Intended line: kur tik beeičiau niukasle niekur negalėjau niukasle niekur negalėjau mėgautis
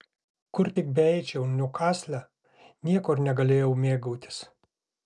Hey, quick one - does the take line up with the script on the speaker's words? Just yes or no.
no